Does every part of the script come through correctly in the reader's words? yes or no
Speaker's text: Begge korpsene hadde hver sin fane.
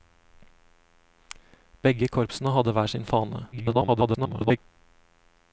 no